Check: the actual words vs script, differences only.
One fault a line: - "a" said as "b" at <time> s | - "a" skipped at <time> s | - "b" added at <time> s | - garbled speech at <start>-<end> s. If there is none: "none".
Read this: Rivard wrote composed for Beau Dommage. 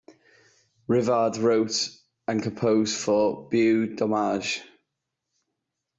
- "and" added at 2.3 s